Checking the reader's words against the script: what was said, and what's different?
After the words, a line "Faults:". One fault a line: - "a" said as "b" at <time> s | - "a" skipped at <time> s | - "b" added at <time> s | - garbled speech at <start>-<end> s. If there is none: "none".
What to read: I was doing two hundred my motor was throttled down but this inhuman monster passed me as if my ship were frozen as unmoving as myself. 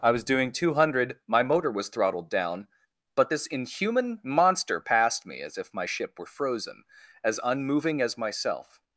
I was doing two hundred my motor was throttled down but this inhuman monster passed me as if my ship were frozen as unmoving as myself.
Faults:
none